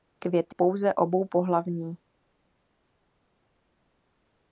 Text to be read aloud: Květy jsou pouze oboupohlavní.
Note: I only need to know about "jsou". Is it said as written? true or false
false